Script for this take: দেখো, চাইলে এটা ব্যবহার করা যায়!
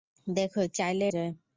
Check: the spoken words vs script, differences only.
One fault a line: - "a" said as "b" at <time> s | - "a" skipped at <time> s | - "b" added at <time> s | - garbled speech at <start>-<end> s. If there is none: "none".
- "এটা ব্যবহার করা" skipped at 1.0 s